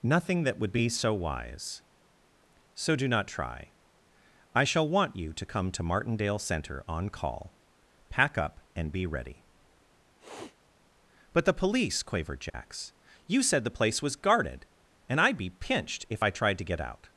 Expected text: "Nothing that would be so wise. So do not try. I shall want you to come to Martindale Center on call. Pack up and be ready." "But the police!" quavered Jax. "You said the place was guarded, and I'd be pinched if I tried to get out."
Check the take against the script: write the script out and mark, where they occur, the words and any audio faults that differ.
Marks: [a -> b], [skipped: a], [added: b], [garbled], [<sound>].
"Nothing that would be so wise. So do not try. I shall want you to come to Martindale Center on call. Pack up and be ready." [sniff] "But the police!" quavered Jax. [dropout] "You said the place was guarded, and I'd be pinched if I tried to get out."